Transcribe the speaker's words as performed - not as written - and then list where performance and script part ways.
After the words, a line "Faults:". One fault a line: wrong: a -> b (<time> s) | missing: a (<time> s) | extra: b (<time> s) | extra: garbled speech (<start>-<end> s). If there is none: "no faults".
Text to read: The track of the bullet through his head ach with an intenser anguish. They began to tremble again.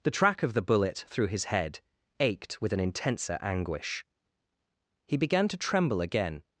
The track of the bullet through his head ached with an intenser anguish. He began to tremble again.
Faults:
wrong: ach -> ached (2.2 s)
wrong: They -> He (5.0 s)